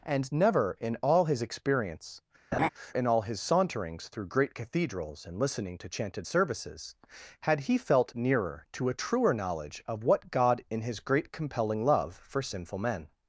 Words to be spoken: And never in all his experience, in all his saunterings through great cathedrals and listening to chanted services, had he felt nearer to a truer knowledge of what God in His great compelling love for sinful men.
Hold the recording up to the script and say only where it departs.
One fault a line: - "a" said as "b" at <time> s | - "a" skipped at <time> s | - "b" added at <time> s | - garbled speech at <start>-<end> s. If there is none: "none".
none